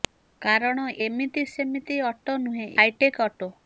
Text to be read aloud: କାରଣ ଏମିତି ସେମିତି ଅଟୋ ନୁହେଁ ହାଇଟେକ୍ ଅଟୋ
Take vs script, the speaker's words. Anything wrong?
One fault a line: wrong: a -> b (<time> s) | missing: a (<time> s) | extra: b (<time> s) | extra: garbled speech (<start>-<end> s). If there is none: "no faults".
no faults